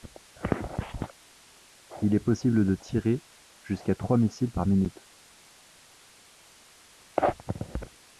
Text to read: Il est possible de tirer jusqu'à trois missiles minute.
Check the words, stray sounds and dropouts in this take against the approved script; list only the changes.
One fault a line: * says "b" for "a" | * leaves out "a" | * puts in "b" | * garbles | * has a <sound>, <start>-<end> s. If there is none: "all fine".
* puts in "par"